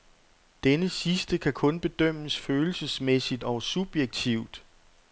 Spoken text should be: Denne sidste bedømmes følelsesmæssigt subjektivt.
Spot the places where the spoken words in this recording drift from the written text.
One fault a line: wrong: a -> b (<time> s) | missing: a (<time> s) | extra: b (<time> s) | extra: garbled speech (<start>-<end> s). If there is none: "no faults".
extra: kan kun (1.4 s)
extra: og (3.4 s)